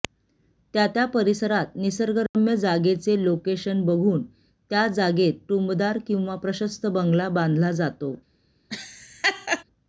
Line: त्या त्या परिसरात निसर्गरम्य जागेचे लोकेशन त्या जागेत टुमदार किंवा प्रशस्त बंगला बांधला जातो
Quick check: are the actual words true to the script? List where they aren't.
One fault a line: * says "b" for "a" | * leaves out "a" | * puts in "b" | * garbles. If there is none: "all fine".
* puts in "बघून"